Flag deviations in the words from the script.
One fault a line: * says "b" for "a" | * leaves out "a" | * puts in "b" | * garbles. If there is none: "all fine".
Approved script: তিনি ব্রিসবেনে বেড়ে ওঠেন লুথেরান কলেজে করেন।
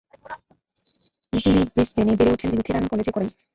all fine